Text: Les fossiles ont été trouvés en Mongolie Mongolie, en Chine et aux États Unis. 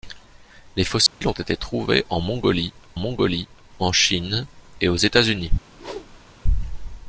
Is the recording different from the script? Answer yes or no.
no